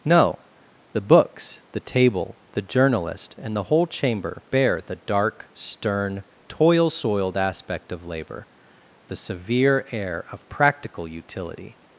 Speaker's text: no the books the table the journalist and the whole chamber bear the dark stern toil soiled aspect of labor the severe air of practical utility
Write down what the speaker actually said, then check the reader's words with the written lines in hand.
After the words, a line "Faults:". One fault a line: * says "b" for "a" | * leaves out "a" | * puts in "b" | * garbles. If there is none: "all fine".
no the books the table the journalist and the whole chamber bear the dark stern toil soiled aspect of labor the severe air of practical utility
Faults:
all fine